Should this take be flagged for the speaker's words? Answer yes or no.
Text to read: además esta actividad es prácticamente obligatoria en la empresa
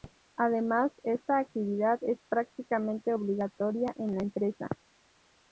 no